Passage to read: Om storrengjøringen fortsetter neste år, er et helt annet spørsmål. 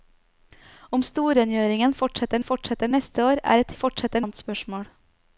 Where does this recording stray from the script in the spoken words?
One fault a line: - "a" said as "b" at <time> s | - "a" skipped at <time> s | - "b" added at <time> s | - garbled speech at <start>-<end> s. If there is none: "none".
- "fortsetter" added at 2.5 s
- "helt" said as "fortsetter" at 3.8 s